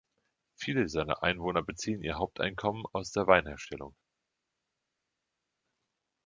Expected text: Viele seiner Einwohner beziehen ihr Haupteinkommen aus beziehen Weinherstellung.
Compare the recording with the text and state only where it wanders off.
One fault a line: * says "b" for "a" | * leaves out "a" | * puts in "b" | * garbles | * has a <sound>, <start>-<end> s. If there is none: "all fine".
* says "der" for "beziehen"